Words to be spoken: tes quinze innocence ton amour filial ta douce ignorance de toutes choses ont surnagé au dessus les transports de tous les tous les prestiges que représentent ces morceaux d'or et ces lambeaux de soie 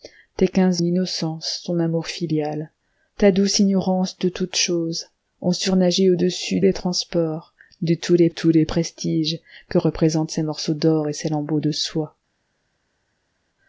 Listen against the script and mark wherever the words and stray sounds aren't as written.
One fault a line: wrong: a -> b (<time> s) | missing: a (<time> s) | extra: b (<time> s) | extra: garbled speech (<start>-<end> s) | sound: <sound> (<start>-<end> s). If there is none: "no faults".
no faults